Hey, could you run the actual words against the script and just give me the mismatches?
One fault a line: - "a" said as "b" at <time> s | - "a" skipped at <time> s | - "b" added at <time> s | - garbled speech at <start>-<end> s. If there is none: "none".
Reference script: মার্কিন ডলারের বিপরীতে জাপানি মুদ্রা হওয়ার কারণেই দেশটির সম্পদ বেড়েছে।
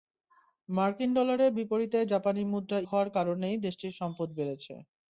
none